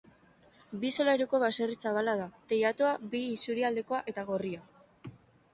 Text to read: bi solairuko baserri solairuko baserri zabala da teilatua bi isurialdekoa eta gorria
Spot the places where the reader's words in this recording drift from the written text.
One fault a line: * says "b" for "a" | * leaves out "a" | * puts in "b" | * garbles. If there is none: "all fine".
* leaves out "solairuko baserri"